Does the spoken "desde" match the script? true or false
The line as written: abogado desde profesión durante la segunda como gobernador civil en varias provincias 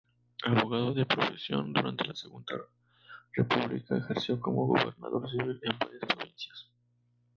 false